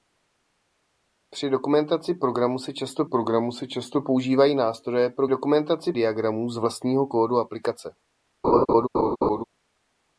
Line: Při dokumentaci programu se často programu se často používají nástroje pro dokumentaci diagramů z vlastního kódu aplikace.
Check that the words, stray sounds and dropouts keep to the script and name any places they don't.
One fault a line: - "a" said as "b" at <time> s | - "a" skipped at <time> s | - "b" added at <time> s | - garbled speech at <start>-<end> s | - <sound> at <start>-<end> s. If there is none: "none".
- laugh at 8.4-9.4 s